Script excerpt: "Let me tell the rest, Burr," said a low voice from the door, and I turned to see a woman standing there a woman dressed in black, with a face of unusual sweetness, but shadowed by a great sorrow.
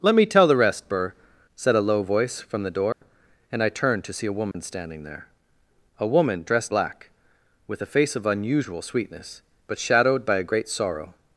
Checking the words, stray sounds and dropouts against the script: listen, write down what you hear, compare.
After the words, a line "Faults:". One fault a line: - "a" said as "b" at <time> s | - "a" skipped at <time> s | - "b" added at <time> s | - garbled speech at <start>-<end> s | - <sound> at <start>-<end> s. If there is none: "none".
"Let me tell the rest, Burr," said a low voice from the door, and I turned to see a woman standing there a woman dressed black, with a face of unusual sweetness, but shadowed by a great sorrow.
Faults:
- dropout at 2.9-3.0 s
- dropout at 4.5-4.5 s
- "in" skipped at 6.7 s